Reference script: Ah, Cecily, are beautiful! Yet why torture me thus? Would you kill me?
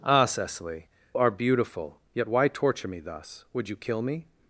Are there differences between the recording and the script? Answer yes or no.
no